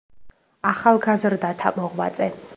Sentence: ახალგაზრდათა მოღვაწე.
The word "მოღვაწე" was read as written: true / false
true